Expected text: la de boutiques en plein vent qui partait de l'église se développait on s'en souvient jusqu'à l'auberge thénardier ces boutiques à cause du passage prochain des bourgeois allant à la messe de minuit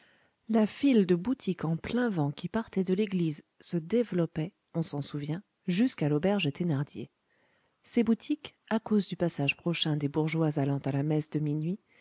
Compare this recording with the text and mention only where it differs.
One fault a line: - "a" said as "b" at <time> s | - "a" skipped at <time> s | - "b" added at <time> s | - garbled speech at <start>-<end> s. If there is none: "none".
- "file" added at 0.7 s